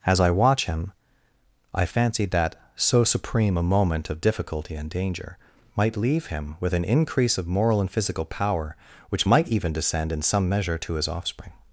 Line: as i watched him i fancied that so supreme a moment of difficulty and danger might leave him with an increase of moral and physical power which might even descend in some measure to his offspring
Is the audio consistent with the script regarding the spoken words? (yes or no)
no